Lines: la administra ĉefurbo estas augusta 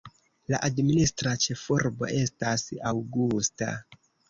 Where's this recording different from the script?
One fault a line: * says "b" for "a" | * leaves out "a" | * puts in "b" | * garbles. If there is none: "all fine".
all fine